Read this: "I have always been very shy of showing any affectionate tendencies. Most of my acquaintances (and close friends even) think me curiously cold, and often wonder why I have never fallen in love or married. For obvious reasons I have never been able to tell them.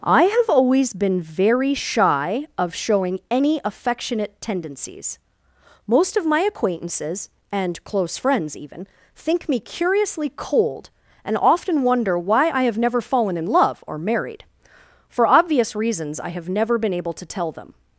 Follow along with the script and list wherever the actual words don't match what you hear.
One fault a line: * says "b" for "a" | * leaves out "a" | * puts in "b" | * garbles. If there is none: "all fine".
all fine